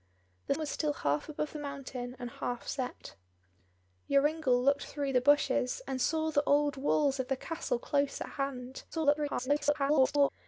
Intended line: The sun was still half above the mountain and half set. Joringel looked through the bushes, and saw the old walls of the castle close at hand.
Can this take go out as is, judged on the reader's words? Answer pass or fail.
fail